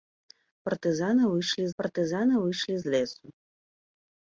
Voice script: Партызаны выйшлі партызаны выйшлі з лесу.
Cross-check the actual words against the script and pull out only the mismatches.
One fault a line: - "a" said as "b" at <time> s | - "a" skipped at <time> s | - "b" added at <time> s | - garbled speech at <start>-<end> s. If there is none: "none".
none